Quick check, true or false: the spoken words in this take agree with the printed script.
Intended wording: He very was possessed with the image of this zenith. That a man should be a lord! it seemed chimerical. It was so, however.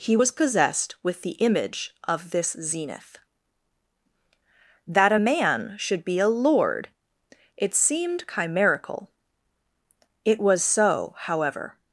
false